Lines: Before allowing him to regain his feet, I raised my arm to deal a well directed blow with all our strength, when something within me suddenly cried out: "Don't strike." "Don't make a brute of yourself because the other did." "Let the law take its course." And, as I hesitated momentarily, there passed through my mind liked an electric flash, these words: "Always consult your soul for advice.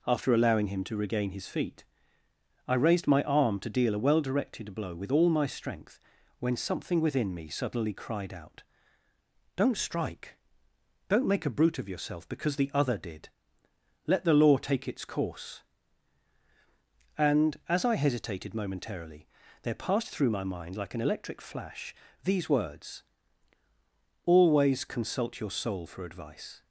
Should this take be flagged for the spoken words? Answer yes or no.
yes